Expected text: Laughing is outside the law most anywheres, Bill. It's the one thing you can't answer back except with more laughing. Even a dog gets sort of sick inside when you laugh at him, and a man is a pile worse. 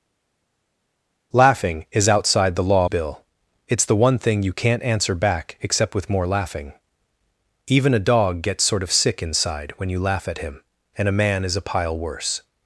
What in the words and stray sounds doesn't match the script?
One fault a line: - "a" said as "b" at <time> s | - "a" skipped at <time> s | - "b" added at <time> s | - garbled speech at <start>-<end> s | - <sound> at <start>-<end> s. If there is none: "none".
- "most anywheres" skipped at 2.9 s